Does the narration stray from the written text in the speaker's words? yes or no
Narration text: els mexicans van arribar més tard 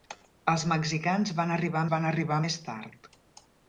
yes